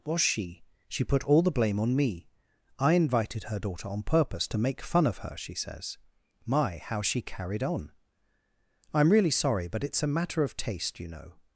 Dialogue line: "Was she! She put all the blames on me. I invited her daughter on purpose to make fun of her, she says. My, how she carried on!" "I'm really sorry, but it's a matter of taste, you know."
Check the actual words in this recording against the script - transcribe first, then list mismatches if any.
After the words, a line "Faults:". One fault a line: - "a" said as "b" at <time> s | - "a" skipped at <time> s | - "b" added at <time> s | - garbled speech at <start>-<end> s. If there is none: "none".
"Was she! She put all the blame on me. I invited her daughter on purpose to make fun of her, she says. My, how she carried on!" "I'm really sorry, but it's a matter of taste, you know."
Faults:
- "blames" said as "blame" at 1.5 s